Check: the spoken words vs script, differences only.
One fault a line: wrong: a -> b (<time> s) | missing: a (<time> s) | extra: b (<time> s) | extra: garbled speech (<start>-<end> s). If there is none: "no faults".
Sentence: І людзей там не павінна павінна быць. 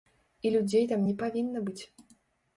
missing: павінна (1.7 s)